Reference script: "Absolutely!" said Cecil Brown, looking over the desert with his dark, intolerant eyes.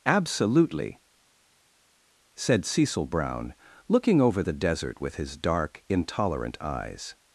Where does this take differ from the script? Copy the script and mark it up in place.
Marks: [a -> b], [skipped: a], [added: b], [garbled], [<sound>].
"Absolutely!" said Cecil Brown, looking over the desert with his dark, intolerant eyes.